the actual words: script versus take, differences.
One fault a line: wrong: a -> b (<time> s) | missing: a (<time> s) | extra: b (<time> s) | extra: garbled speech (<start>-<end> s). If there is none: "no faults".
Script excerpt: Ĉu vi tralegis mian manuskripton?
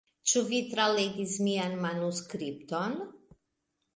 no faults